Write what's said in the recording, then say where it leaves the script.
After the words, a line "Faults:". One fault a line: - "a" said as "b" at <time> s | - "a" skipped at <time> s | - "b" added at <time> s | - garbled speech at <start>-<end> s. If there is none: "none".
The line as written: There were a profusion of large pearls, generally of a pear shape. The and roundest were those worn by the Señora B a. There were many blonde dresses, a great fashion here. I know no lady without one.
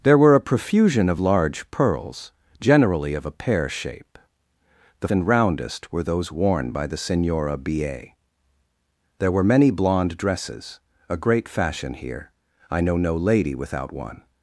There were a profusion of large pearls, generally of a pear shape. The and roundest were those worn by the Señora B a. There were many blonde dresses, a great fashion here. I know no lady without one.
Faults:
none